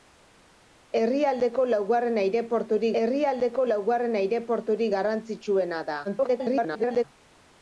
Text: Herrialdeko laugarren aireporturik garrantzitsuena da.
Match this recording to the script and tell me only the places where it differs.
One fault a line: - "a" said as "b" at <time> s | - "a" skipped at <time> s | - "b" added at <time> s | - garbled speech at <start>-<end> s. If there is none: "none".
- "herrialdeko laugarren aireporturik" added at 3.0 s
- garbled speech at 6.0-7.0 s